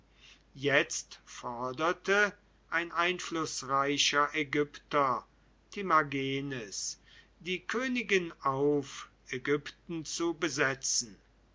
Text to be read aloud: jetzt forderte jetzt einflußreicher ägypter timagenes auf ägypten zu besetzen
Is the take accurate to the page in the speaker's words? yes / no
no